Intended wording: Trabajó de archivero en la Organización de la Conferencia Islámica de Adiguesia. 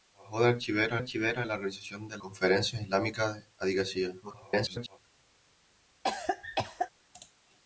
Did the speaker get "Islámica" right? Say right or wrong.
right